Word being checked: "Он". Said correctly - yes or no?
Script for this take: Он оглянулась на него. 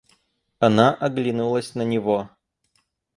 no